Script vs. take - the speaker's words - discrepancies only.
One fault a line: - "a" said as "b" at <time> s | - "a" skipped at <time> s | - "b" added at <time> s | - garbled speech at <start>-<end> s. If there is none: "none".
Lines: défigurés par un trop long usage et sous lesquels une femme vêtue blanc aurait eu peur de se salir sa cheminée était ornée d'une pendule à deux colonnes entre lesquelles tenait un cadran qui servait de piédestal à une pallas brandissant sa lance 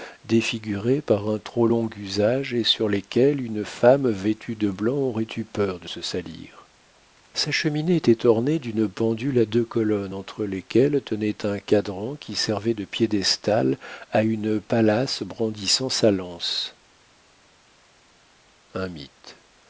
- "sous" said as "sur" at 2.6 s
- "de" added at 4.5 s